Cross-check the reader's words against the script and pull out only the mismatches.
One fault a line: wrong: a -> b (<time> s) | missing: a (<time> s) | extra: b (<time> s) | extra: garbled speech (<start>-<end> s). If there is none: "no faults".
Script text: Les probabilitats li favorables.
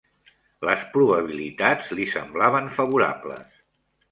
extra: semblaven (2.1 s)